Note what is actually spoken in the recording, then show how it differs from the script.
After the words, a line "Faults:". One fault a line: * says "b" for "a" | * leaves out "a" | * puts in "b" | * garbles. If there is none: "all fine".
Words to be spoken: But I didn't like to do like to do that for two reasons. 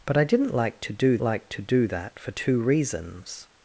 But I didn't like to do like to do that for two reasons.
Faults:
all fine